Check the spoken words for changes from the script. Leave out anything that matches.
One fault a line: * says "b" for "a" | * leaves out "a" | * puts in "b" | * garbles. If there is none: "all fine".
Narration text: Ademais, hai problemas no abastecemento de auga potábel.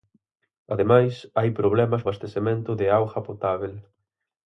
* leaves out "no"